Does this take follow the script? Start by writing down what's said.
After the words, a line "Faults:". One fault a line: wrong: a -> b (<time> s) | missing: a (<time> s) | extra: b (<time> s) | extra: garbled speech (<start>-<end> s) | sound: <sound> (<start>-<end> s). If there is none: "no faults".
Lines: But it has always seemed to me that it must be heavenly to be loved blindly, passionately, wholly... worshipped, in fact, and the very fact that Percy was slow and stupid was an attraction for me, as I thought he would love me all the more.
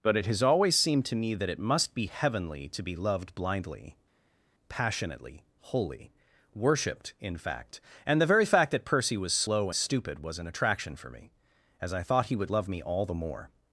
But it has always seemed to me that it must be heavenly to be loved blindly, passionately, wholly... worshipped, in fact, and the very fact that Percy was slow stupid was an attraction for me, as I thought he would love me all the more.
Faults:
missing: and (9.7 s)